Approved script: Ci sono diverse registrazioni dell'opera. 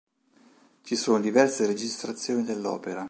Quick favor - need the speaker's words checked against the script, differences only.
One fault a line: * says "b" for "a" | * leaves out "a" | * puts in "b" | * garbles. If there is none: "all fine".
all fine